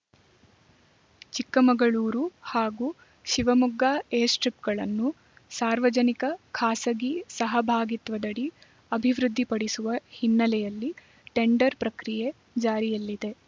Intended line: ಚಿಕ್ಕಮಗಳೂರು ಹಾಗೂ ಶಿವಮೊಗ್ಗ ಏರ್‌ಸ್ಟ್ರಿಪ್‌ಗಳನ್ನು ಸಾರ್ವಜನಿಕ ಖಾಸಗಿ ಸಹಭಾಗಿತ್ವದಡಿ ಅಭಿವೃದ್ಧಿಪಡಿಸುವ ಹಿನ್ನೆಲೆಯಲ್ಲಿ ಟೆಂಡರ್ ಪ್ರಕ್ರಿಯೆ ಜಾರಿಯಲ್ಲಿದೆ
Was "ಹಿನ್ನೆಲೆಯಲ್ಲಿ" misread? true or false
false